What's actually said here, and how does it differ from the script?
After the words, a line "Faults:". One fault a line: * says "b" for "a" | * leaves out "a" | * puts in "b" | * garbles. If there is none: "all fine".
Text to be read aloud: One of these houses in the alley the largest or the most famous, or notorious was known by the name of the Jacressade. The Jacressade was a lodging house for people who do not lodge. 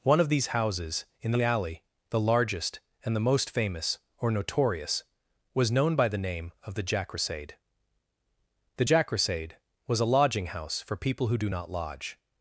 One of these houses in the alley the largest and the most famous, or notorious was known by the name of the Jacressade. The Jacressade was a lodging house for people who do not lodge.
Faults:
* says "and" for "or"